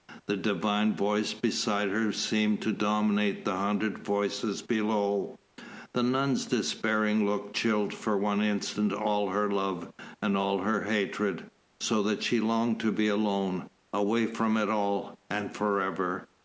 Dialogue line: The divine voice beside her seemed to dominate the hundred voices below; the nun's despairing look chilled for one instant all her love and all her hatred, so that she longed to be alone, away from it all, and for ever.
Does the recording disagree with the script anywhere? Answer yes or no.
no